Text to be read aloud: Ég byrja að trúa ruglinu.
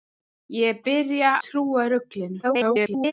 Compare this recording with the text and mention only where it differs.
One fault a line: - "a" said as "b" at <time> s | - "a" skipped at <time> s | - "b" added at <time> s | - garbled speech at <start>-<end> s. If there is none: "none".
- "að" skipped at 1.4 s
- garbled speech at 2.4-3.1 s